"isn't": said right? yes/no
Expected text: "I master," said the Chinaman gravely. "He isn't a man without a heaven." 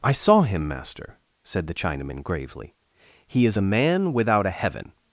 no